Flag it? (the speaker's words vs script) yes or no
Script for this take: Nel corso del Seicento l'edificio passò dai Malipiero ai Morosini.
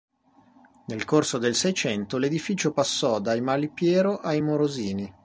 no